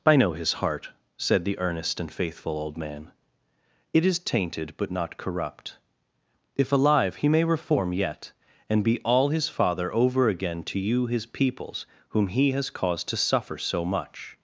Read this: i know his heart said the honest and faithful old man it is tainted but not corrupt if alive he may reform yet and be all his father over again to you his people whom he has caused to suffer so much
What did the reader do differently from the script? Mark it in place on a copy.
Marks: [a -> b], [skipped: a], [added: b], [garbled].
i know his heart said the [honest -> earnest] and faithful old man it is tainted but not corrupt if alive he may reform yet and be all his father over again to you his [people -> peoples] whom he has caused to suffer so much